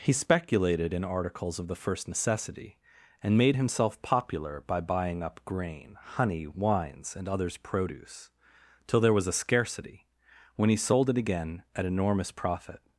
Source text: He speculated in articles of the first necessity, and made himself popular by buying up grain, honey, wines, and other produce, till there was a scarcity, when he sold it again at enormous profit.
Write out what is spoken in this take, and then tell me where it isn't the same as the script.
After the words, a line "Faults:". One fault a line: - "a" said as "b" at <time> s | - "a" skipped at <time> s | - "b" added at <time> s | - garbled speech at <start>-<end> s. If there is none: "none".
He speculated in articles of the first necessity, and made himself popular by buying up grain, honey, wines, and others produce, till there was a scarcity, when he sold it again at enormous profit.
Faults:
- "other" said as "others" at 7.3 s